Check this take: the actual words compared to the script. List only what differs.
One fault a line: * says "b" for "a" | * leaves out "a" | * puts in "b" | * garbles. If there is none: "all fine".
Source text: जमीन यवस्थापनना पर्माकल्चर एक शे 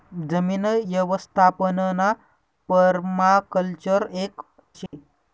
all fine